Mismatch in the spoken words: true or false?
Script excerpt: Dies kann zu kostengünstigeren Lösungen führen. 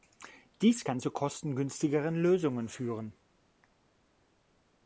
false